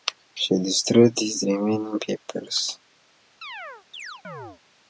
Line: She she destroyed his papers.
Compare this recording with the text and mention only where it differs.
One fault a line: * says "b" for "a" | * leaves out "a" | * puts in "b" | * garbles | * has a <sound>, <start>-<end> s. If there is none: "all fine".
* leaves out "she"
* puts in "remaining"
* has a chirp, 3.4-4.6 s